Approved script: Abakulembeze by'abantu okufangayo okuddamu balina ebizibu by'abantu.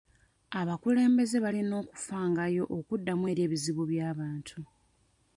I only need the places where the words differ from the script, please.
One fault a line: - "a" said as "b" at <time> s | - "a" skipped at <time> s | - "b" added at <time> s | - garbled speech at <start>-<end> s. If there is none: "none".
- "by'abantu" said as "balina" at 1.4 s
- "balina" said as "eri" at 3.3 s